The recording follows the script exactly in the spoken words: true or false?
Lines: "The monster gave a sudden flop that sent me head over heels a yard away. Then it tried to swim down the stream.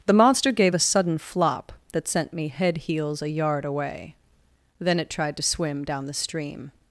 false